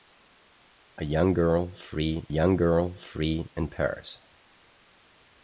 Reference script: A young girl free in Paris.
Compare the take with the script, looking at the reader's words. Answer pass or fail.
fail